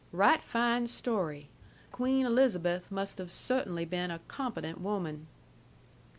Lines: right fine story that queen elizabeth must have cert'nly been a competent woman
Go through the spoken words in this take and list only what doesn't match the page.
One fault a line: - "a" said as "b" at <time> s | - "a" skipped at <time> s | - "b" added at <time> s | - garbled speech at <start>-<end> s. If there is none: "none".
- "that" skipped at 1.5 s